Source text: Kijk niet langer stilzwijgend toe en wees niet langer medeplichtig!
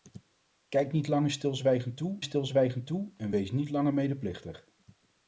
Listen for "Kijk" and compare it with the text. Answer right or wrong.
right